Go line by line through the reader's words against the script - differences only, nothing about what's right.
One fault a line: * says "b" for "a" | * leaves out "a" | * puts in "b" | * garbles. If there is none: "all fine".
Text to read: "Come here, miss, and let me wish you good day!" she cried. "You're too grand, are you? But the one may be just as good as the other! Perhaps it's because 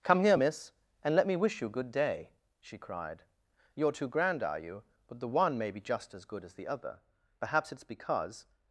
all fine